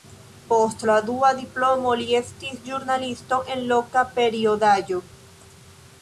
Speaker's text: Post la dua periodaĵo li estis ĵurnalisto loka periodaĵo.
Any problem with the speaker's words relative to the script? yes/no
yes